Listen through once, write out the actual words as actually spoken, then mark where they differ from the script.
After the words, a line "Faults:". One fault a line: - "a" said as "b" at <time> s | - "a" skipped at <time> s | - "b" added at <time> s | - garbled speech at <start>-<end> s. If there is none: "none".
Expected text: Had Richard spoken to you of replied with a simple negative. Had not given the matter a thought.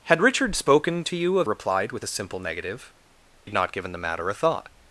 Had Richard spoken to you of replied with a simple negative. Had not given the matter a thought.
Faults:
none